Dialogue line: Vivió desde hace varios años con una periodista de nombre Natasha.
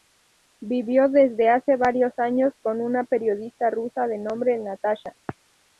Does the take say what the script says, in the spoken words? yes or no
no